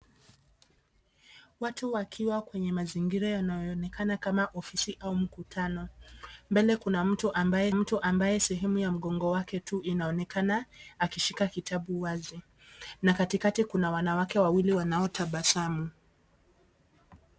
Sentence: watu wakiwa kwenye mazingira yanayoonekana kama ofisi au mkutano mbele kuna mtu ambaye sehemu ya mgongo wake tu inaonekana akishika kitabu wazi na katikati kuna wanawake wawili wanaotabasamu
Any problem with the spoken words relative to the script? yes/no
yes